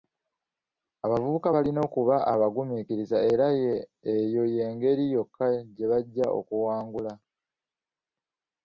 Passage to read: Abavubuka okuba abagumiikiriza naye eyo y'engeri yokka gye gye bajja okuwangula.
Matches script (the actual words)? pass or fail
fail